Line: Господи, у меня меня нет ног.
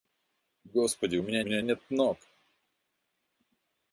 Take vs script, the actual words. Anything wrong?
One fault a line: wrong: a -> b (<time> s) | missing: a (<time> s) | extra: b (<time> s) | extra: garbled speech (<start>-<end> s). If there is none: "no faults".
no faults